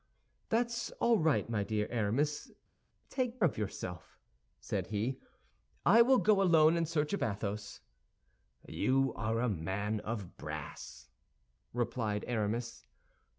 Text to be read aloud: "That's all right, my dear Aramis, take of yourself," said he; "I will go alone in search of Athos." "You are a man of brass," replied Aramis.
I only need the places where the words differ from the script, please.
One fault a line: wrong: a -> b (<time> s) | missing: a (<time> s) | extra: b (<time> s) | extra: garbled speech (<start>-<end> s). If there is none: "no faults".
no faults